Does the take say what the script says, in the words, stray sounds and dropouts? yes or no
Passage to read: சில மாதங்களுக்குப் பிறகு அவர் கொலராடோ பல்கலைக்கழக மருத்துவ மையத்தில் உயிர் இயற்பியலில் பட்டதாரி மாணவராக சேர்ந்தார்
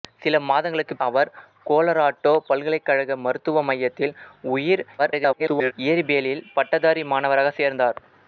no